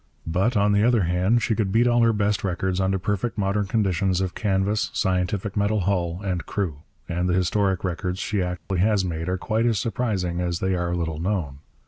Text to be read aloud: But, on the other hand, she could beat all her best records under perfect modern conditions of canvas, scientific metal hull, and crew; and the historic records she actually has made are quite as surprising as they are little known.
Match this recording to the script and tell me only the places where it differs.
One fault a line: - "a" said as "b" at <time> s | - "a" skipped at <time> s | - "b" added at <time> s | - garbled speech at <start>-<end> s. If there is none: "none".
none